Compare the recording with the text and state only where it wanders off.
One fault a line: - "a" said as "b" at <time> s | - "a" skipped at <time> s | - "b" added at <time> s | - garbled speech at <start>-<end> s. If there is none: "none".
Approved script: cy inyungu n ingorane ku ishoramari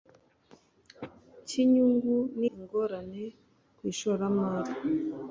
none